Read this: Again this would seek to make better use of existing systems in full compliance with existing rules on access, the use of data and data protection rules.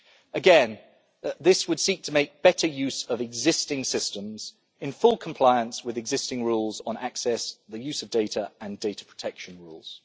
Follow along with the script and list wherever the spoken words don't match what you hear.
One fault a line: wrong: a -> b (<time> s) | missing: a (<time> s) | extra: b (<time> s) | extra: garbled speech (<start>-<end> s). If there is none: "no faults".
no faults